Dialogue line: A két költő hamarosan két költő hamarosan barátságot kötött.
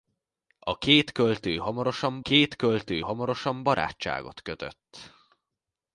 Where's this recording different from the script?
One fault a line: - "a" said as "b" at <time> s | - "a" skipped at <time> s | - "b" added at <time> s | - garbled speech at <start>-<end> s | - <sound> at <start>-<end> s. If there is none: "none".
none